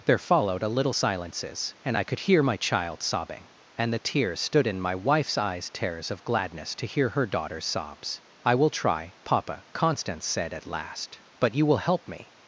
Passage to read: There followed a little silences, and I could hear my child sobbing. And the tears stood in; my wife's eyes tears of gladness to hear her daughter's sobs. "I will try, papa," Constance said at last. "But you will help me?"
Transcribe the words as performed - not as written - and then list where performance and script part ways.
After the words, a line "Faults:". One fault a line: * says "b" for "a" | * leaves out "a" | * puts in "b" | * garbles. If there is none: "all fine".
There followed a little silences, and I could hear my child sobbing. And the tears stood in; my wife's eyes tears of gladness to hear her daughter's sobs. "I will try, papa," Constance said at last. "But you will help me?"
Faults:
all fine